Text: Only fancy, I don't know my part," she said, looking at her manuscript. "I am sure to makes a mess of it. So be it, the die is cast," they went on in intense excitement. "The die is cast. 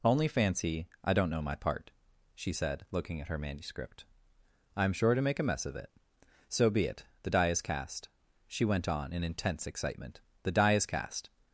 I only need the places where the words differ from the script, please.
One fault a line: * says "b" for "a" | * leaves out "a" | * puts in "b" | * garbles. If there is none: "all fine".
* says "make" for "makes"
* says "she" for "they"